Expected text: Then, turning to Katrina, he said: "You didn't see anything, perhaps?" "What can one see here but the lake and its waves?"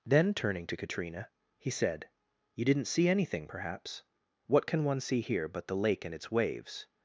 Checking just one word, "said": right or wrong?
right